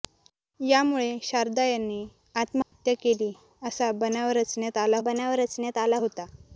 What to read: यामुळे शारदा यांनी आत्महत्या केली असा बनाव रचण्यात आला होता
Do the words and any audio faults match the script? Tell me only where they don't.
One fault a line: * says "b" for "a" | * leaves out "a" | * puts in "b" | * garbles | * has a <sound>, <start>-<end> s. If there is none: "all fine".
* has a dropout, 2.6-2.7 s
* puts in "बनाव रचण्यात आला"